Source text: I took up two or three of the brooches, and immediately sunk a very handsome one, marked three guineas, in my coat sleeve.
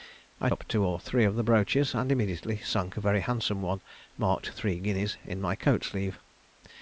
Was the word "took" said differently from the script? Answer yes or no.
yes